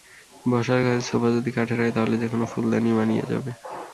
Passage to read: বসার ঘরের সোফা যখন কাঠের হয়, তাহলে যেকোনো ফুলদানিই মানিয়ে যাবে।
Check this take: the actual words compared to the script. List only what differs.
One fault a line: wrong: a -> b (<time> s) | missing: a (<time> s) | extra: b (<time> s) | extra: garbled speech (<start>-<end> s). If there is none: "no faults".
wrong: যখন -> যদি (1.4 s)